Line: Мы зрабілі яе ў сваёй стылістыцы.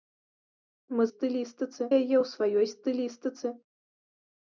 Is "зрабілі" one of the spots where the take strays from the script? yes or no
yes